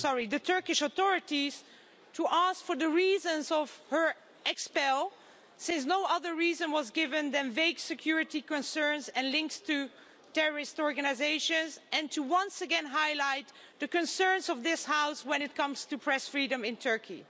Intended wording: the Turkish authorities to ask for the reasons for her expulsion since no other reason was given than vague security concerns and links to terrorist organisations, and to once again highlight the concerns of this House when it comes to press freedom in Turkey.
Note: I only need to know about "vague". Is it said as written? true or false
true